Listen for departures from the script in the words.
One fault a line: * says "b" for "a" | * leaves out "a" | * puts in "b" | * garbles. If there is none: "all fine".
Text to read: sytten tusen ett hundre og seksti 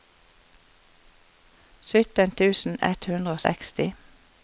all fine